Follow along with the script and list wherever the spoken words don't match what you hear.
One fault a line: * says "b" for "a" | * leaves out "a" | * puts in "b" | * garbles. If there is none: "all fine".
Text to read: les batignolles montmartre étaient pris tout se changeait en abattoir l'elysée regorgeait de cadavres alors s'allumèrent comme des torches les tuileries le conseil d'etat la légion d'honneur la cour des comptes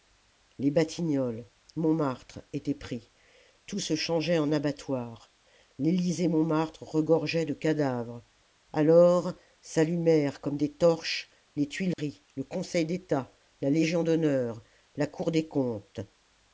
* puts in "montmartre"